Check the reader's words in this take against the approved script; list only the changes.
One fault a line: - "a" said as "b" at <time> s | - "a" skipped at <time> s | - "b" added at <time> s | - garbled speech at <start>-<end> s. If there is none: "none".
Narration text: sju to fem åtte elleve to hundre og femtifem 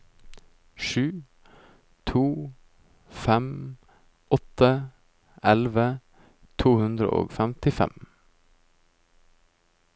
none